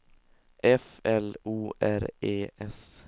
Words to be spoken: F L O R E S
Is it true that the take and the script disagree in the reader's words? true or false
false